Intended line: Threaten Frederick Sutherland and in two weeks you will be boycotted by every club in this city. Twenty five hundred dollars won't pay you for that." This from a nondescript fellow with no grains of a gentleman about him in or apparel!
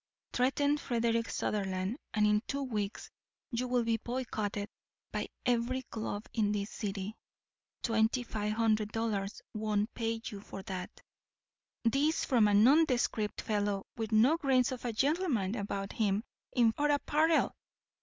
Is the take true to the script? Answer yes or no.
yes